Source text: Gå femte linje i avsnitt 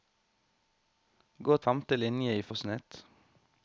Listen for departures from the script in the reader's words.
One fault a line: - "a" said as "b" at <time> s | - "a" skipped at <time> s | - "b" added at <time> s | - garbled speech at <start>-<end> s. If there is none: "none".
none